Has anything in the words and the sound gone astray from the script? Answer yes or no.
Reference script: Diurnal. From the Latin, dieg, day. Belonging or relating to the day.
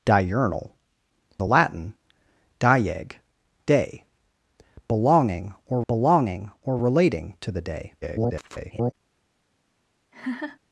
yes